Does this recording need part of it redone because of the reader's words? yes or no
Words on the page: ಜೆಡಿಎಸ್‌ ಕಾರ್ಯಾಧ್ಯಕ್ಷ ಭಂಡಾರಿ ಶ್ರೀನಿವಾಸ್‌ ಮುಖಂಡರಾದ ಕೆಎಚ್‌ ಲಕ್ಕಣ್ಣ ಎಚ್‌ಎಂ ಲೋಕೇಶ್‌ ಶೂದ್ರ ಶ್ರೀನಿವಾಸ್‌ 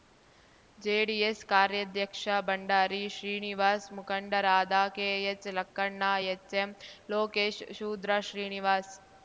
no